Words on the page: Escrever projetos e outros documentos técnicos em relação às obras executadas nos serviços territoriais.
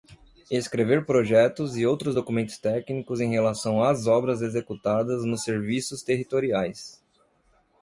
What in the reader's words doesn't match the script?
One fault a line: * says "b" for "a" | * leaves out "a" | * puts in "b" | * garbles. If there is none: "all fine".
all fine